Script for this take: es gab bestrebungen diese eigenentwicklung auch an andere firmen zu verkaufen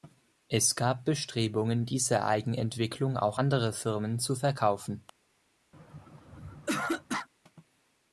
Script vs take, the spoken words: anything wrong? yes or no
yes